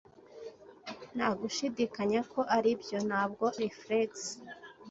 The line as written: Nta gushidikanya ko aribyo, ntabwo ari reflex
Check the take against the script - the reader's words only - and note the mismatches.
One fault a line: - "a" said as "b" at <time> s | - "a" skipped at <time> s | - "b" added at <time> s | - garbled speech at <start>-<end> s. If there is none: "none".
- "ari" skipped at 3.5 s